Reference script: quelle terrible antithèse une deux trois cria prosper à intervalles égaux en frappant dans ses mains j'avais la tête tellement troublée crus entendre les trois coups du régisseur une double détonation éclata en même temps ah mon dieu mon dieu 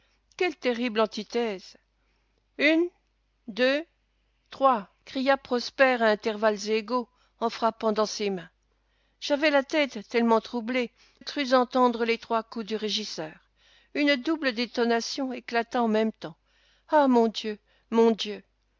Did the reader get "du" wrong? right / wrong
right